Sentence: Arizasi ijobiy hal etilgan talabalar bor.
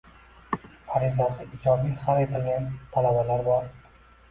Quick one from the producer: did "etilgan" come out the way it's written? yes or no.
yes